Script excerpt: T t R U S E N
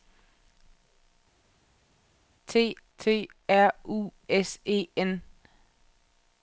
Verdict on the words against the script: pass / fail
pass